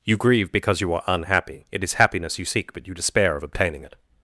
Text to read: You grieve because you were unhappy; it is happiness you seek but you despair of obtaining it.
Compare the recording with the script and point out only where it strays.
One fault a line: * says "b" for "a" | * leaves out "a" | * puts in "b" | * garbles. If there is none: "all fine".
* says "are" for "were"